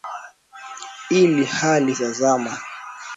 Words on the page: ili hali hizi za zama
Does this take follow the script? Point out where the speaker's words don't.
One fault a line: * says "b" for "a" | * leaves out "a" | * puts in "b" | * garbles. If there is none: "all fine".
* leaves out "hizi"